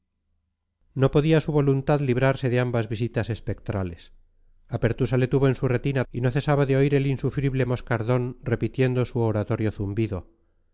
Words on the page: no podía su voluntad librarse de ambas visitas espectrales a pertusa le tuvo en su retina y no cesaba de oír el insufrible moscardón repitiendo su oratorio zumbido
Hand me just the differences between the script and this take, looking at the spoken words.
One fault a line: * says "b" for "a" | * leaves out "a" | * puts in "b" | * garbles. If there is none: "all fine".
all fine